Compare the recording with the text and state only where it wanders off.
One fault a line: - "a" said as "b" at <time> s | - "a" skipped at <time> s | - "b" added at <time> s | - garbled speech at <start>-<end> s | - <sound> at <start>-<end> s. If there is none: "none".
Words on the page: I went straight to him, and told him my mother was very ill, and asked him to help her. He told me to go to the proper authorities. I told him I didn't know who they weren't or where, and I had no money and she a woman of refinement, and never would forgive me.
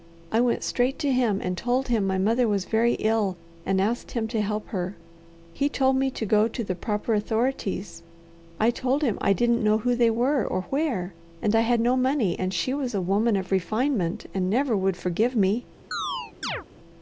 - "weren't" said as "were" at 10.1 s
- "was" added at 12.7 s
- chirp at 15.9-16.6 s